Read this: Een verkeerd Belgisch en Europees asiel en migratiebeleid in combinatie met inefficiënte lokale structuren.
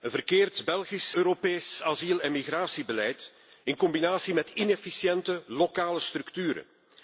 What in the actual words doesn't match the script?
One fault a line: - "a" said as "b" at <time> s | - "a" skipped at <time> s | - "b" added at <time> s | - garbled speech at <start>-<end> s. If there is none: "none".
- "en" skipped at 1.1 s